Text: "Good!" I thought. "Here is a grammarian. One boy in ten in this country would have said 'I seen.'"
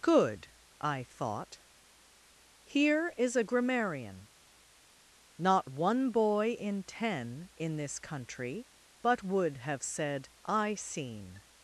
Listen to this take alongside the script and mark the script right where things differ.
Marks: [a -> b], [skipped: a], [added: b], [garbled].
"Good!" I thought. "Here is a grammarian. [added: Not] One boy in ten in this country [added: but] would have said 'I seen.'"